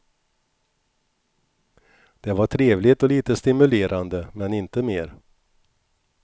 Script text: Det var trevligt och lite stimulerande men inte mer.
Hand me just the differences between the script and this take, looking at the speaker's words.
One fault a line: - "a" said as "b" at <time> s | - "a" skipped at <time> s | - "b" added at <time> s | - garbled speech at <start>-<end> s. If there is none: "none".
none